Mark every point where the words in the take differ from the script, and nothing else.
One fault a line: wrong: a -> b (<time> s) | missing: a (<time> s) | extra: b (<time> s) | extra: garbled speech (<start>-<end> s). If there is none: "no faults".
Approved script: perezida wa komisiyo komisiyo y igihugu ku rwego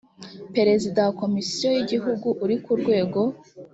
missing: komisiyo (1.7 s)
extra: uri (2.4 s)